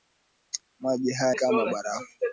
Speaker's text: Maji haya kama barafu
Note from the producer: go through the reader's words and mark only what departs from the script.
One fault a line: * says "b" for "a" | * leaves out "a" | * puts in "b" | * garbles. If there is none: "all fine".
all fine